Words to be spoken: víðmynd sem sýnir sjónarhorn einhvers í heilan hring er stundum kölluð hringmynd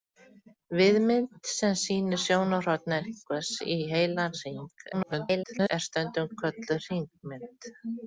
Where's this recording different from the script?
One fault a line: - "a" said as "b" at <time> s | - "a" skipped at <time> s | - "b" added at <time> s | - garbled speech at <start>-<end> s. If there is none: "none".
- garbled speech at 4.9-5.7 s